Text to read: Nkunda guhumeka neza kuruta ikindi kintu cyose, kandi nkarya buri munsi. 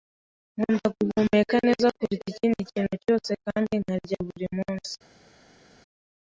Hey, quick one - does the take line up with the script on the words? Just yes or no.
yes